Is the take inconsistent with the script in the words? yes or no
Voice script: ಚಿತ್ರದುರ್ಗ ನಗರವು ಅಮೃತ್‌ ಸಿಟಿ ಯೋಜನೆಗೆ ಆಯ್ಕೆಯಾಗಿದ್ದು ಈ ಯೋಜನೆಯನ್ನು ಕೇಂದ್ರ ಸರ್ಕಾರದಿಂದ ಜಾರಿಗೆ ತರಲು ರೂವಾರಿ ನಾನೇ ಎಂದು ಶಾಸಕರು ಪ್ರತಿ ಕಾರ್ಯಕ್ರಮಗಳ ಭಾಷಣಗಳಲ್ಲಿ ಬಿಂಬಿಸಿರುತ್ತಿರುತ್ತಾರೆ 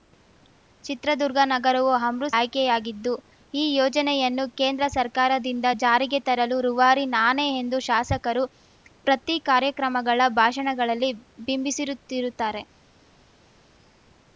yes